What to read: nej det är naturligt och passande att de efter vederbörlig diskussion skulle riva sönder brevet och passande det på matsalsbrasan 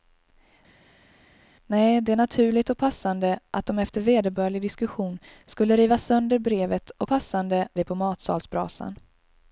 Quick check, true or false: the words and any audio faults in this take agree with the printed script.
true